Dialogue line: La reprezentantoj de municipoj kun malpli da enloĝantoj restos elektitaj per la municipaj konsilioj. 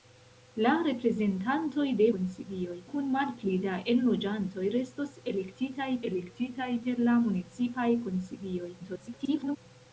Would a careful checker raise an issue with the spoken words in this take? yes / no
yes